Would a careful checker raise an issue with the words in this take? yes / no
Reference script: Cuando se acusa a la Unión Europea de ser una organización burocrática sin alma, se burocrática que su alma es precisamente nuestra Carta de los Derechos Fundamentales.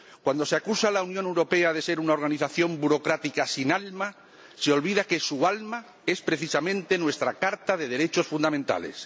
yes